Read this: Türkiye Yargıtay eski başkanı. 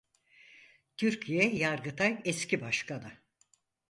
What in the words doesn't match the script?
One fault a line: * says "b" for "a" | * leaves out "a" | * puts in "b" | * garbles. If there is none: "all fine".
all fine